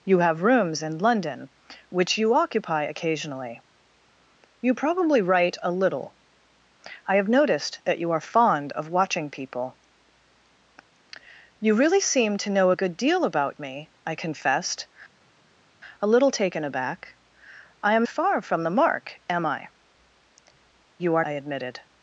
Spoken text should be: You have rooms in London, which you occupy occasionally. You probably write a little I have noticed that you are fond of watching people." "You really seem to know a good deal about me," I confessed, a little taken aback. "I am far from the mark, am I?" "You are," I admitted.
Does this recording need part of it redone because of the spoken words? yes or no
no